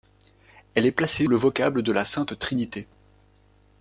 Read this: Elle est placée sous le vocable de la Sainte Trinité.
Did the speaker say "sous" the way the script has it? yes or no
no